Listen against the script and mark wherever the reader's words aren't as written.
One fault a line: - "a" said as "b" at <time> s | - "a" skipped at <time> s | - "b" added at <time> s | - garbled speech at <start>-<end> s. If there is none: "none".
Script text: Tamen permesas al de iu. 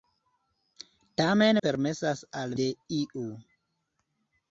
none